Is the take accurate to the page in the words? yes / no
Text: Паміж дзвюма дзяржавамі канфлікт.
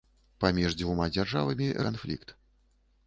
yes